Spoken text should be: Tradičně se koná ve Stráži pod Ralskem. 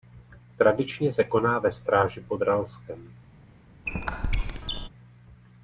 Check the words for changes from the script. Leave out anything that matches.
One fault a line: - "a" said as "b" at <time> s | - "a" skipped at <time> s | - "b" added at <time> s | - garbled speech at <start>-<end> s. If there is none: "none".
none